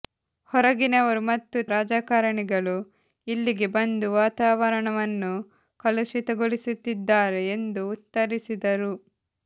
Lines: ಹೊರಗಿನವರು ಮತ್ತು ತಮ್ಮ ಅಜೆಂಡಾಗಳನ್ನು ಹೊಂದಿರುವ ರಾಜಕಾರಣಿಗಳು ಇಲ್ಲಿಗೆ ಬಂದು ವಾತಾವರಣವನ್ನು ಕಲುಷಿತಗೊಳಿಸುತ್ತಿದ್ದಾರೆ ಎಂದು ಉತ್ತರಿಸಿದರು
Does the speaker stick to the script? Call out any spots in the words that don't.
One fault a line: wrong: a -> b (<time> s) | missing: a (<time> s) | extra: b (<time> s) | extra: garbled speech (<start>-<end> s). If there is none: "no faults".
missing: ತಮ್ಮ ಅಜೆಂಡಾಗಳನ್ನು ಹೊಂದಿರುವ (1.6 s)